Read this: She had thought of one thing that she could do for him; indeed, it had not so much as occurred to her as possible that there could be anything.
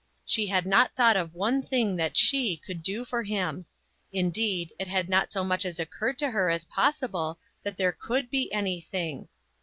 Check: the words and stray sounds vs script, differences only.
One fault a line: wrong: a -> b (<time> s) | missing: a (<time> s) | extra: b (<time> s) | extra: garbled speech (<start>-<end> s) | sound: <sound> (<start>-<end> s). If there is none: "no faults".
extra: not (0.7 s)